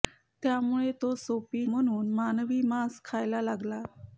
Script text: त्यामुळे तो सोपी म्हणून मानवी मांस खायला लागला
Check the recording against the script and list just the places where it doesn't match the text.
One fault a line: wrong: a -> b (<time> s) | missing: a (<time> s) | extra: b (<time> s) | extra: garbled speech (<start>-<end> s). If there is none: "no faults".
no faults